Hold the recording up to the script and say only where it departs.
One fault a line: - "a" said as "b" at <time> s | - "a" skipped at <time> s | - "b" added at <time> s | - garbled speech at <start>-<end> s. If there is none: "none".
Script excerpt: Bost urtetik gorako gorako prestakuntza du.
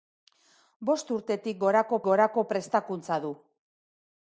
none